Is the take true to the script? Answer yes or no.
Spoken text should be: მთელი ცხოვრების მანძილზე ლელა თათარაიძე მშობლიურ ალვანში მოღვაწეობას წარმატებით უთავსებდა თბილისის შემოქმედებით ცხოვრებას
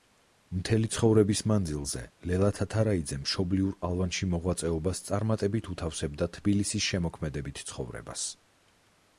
yes